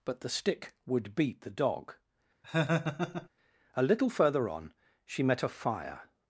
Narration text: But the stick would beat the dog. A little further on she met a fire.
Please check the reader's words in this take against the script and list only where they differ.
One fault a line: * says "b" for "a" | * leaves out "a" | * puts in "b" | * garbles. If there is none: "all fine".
all fine